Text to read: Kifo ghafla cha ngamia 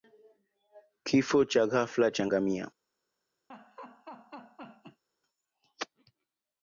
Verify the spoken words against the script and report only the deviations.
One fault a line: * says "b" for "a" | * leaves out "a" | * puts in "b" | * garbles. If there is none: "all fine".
* puts in "cha"